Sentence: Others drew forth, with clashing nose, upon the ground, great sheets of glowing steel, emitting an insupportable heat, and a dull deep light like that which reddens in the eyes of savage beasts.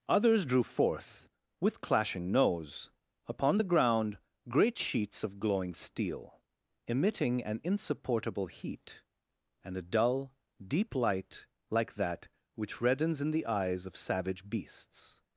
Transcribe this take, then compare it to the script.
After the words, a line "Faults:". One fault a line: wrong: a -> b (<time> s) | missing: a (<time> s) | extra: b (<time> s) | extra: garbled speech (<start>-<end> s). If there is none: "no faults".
Others drew forth, with clashing nose, upon the ground, great sheets of glowing steel, emitting an insupportable heat, and a dull deep light like that which reddens in the eyes of savage beasts.
Faults:
no faults